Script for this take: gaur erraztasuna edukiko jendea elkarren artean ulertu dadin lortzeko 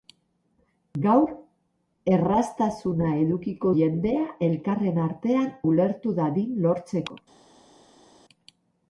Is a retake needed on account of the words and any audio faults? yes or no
no